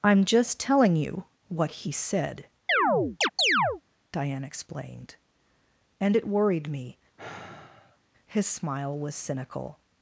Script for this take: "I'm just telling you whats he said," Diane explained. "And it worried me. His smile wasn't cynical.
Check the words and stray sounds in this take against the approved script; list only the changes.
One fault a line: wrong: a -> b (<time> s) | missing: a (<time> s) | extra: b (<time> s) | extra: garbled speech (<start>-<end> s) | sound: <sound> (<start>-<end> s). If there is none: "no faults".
wrong: whats -> what (1.5 s)
sound: chirp (2.7-3.8 s)
sound: sigh (7.2-8.0 s)
wrong: wasn't -> was (9.0 s)